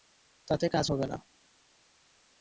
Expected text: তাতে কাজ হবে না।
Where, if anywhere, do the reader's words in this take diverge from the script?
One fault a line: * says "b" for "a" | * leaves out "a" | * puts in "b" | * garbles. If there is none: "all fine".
all fine